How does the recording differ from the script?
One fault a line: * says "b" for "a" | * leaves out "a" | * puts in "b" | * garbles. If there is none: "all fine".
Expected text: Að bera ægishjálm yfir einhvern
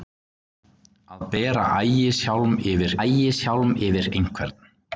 * puts in "ægishjálm yfir"